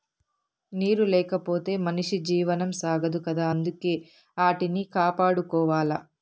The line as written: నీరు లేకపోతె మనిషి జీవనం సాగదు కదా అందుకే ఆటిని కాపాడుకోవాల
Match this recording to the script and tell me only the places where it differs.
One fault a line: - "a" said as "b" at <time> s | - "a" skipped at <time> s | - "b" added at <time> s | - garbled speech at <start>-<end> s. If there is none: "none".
none